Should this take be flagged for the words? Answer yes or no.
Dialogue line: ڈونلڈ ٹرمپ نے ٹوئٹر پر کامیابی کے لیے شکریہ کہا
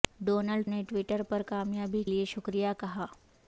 yes